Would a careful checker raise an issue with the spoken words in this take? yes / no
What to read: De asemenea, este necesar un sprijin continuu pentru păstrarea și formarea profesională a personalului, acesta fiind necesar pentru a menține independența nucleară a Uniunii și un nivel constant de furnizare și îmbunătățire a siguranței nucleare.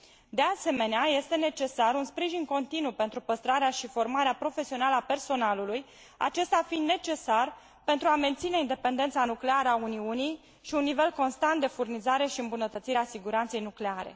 no